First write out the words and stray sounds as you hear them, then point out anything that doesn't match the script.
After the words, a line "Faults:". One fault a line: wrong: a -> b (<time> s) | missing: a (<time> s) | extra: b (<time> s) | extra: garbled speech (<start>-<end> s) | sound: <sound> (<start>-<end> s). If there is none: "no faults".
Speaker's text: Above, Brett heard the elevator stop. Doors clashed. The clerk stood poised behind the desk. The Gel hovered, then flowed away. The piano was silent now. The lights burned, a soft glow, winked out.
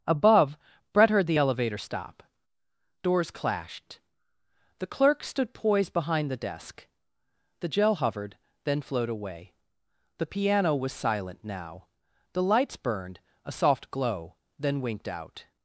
Above, Brett heard the elevator stop. Doors clashed. The clerk stood poised behind the desk. The Gel hovered, then flowed away. The piano was silent now. The lights burned, a soft glow, then winked out.
Faults:
extra: then (14.6 s)